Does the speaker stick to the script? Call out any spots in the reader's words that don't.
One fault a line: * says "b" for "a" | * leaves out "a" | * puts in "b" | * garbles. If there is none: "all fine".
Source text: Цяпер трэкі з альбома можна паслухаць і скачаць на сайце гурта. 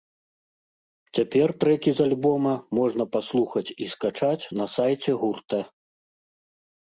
all fine